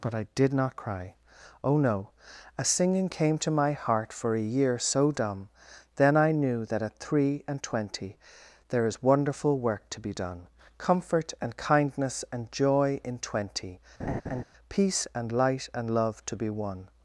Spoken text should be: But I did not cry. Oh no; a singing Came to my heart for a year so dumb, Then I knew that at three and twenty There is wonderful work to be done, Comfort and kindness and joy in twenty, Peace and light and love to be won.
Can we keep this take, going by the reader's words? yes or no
yes